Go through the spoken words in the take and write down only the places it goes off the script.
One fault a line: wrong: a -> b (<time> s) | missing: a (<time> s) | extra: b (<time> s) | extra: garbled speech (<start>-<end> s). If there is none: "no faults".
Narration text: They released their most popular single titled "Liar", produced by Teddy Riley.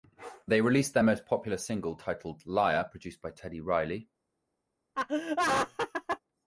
no faults